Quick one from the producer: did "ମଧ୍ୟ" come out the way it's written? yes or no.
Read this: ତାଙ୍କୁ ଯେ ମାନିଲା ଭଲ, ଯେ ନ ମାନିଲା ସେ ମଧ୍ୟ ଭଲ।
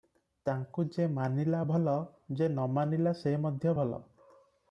yes